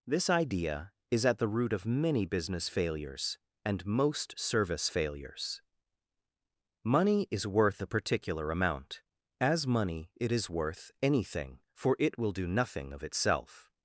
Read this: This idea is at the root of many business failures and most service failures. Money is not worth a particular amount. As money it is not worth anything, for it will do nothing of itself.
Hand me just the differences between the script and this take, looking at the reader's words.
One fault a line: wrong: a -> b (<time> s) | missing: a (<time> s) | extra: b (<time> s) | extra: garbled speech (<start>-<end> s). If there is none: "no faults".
missing: not (7.5 s)
missing: not (10.5 s)